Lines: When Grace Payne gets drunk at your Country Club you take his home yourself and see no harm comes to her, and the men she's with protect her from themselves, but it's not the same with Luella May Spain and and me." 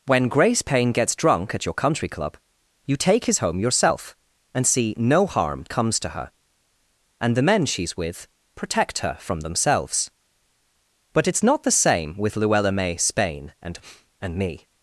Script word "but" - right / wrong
right